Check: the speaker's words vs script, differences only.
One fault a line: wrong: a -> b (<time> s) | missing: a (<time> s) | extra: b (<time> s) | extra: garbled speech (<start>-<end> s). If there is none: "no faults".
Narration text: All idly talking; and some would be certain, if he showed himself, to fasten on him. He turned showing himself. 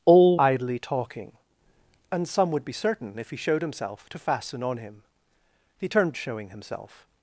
no faults